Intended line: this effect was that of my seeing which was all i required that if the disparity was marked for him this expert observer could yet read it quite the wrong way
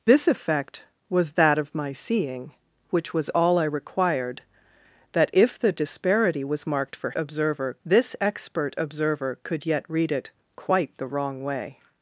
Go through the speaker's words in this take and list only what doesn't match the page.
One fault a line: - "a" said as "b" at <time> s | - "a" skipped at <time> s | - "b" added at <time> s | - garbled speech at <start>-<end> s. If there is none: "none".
- "him" said as "observer" at 7.1 s